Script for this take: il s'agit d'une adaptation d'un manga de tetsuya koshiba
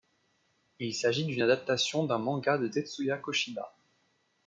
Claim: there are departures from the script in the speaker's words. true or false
false